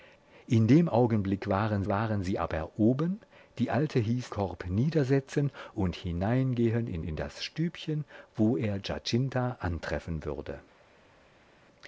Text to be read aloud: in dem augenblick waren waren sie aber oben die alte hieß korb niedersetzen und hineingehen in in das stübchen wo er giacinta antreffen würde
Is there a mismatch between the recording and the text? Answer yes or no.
no